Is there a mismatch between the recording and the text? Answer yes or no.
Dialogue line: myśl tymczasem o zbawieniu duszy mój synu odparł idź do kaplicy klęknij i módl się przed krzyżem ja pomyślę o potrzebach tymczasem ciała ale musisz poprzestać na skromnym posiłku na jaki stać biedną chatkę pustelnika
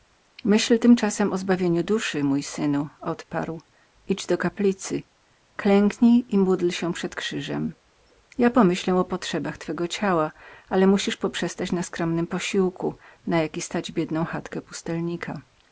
yes